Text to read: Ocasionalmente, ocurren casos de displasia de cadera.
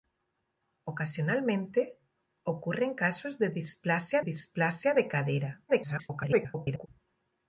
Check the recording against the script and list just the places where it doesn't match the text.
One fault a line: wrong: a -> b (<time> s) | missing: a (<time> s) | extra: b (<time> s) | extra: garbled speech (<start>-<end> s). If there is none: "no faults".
extra: displasia (4.2 s)
extra: garbled speech (5.7-6.9 s)